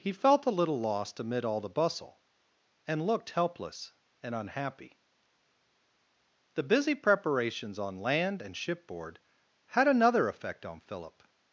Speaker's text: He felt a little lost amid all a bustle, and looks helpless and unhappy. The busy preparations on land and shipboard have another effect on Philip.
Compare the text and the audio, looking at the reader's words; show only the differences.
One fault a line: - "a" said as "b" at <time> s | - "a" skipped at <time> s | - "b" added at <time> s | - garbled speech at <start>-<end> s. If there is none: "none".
- "a" said as "the" at 1.6 s
- "looks" said as "looked" at 3.0 s
- "have" said as "had" at 9.7 s